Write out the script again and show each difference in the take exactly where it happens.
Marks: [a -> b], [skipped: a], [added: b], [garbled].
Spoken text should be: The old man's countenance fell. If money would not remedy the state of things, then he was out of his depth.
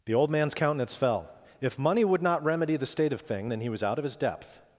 The old man's countenance fell. If money would not remedy the state of [things, -> thing] then he was out of his depth.